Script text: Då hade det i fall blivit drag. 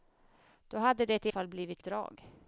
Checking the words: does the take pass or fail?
pass